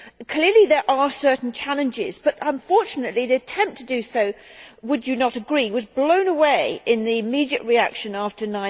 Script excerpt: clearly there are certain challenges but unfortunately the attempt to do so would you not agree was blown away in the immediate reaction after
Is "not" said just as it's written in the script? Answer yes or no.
yes